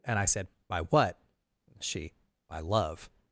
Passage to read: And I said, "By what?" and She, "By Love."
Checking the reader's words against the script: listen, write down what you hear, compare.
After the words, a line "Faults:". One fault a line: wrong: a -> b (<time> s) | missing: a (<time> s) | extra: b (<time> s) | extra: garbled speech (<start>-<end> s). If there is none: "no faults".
And I said, "By what?" She, "By Love."
Faults:
missing: and (1.2 s)